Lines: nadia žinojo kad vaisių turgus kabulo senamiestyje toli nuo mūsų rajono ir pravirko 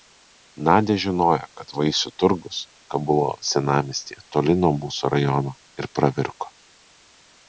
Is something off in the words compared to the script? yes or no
no